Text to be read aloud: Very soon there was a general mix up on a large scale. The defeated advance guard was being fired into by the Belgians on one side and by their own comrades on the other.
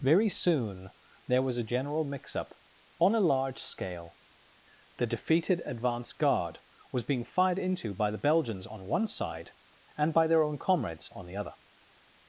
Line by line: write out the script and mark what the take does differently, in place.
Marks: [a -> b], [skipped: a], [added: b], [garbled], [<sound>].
Very soon there was a general mix up on a large scale. The defeated advance guard was being fired into by the Belgians on one side and by their own comrades on the other.